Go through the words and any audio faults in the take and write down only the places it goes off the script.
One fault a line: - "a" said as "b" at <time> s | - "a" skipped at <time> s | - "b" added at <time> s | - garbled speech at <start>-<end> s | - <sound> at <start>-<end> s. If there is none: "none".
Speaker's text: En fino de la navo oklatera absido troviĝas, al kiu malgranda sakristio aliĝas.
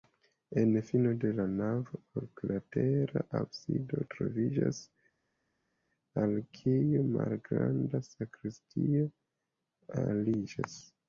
none